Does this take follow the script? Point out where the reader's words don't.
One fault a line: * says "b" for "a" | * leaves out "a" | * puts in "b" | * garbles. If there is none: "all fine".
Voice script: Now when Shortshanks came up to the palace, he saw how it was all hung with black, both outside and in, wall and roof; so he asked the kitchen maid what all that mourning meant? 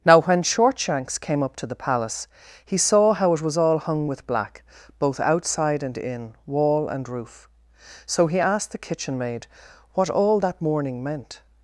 all fine